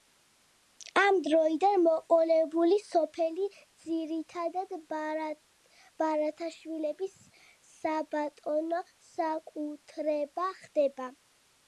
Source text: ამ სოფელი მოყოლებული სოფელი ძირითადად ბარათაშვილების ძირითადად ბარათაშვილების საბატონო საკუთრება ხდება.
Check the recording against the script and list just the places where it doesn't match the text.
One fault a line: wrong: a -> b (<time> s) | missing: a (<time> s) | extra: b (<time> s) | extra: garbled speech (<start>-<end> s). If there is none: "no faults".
wrong: სოფელი -> დროიდან (1.2 s)
missing: ძირითადად ბარათაშვილების (7.2 s)